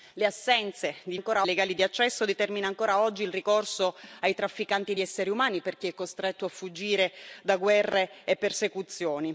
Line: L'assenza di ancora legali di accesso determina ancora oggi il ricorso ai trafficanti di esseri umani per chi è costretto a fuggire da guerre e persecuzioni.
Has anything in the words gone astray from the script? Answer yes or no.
no